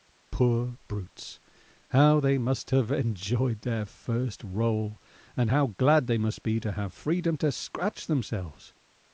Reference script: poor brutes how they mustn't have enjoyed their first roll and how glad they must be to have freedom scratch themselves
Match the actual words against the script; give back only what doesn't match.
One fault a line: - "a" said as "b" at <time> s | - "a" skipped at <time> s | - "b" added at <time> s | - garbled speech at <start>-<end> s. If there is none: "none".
- "mustn't" said as "must" at 2.4 s
- "to" added at 7.4 s